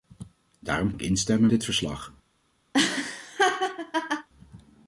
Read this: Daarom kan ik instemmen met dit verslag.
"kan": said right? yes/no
no